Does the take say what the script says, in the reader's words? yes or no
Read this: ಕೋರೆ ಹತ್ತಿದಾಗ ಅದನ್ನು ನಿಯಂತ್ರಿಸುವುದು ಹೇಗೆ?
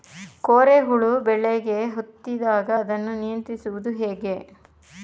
no